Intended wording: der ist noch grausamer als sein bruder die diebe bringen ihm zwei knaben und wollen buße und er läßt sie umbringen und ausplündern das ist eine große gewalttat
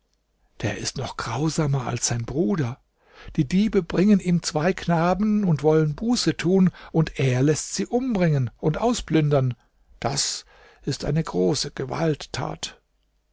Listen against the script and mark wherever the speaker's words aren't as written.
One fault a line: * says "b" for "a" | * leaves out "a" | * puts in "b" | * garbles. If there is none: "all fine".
* puts in "tun"